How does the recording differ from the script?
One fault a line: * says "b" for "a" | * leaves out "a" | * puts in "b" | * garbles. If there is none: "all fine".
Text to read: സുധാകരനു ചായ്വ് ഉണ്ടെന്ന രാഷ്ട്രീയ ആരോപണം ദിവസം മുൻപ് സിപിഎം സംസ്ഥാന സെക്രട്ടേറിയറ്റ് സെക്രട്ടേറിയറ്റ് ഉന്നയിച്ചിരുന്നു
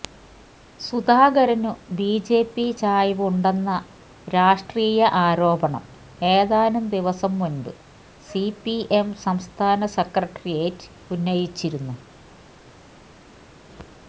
* puts in "ബിജെപി"
* puts in "ഏതാനും"
* leaves out "സെക്രട്ടേറിയറ്റ്"